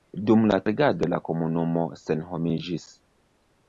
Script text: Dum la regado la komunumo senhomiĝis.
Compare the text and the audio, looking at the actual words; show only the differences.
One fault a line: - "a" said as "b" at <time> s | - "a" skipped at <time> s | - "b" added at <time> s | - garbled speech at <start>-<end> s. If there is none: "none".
none